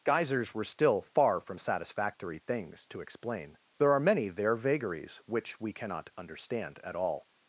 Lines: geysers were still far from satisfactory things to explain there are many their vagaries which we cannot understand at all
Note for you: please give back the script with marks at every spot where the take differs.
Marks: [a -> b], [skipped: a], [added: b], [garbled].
geysers were still far from satisfactory things to explain there are many their vagaries which we cannot understand at all